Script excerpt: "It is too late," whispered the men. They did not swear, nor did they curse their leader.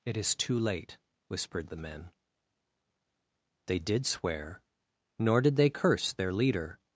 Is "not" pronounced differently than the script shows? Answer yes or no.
yes